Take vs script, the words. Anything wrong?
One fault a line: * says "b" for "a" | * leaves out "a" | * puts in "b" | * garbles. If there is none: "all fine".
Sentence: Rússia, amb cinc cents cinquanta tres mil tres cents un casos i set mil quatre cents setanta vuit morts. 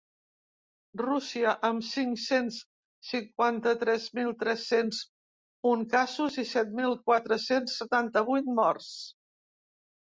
all fine